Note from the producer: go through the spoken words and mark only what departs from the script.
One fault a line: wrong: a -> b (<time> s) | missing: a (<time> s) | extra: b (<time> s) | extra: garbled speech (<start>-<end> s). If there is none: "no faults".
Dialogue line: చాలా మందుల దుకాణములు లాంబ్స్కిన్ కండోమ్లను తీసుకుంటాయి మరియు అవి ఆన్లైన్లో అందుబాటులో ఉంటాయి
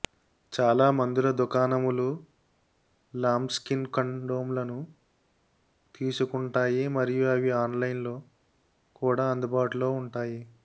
extra: కూడా (8.9 s)